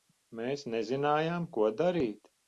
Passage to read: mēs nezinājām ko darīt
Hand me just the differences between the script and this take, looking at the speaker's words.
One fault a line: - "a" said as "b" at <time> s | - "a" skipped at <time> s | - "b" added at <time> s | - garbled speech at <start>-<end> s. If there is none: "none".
none